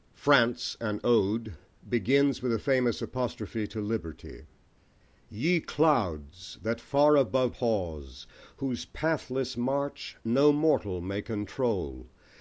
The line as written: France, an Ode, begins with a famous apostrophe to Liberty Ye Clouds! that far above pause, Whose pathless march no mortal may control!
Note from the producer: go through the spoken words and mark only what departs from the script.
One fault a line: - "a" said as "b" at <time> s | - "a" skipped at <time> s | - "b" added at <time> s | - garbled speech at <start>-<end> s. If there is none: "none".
none